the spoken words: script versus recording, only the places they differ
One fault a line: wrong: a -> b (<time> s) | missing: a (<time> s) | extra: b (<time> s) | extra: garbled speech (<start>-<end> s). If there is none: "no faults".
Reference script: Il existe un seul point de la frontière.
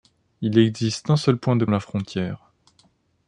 no faults